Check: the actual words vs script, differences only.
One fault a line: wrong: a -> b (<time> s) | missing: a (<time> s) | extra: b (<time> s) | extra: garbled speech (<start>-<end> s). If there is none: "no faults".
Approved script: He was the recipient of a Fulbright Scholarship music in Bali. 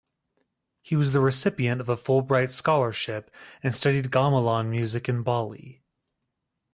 extra: and studied gamelan (3.6 s)